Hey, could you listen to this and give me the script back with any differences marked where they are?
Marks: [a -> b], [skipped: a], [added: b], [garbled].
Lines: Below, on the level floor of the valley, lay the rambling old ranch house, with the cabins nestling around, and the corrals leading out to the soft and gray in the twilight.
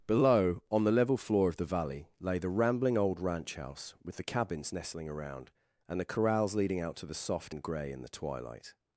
Below, on the level floor of the valley, lay the rambling old ranch house, with the cabins nestling around, and the corrals leading out to the soft and gray in the twilight.